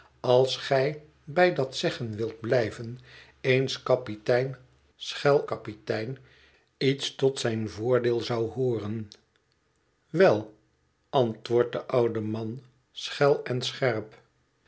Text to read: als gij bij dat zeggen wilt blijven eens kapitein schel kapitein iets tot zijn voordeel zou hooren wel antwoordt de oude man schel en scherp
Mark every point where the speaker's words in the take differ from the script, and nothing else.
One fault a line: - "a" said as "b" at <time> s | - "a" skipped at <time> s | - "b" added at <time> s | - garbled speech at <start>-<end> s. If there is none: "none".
none